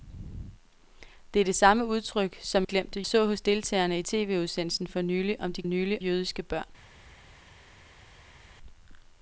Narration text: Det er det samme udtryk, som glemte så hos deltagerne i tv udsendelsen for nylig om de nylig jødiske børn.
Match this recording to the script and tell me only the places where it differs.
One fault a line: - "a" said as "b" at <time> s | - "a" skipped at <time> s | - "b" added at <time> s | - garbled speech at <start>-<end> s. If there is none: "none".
none